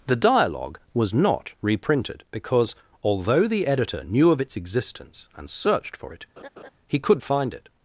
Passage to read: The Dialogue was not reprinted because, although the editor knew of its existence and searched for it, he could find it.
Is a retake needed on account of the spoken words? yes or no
no